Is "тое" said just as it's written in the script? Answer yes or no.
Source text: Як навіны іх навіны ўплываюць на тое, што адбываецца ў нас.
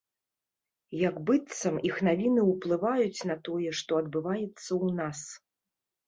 yes